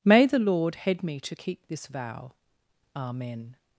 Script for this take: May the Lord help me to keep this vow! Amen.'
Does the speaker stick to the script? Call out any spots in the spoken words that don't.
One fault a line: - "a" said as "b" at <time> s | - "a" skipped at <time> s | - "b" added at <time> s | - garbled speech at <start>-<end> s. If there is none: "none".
- "help" said as "head" at 0.8 s